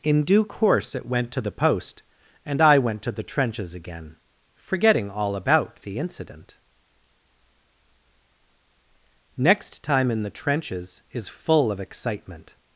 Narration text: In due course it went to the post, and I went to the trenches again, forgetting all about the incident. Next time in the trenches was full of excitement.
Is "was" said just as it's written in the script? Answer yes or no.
no